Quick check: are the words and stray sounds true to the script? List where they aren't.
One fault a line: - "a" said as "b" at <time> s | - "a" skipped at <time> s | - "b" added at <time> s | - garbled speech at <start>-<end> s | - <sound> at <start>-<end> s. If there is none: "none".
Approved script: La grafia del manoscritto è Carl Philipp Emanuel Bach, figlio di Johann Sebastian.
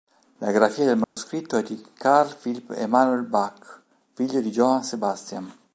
- dropout at 1.0-1.2 s
- "di" added at 1.6 s